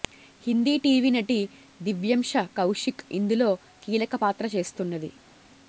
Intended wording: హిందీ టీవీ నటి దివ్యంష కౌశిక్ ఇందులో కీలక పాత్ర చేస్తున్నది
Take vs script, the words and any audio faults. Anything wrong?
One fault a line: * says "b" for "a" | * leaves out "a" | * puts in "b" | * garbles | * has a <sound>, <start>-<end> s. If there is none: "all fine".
all fine